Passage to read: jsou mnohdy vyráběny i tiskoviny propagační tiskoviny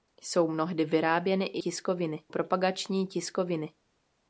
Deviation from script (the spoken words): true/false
false